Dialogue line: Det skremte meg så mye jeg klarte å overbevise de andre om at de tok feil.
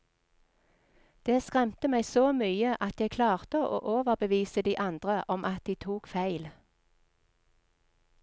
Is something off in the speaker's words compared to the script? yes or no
yes